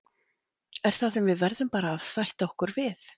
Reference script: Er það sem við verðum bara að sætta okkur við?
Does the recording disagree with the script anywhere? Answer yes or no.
no